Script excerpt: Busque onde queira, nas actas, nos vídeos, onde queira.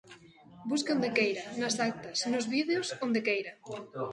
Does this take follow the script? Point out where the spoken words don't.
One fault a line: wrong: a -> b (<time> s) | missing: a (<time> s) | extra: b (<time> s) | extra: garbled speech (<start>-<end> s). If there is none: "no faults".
no faults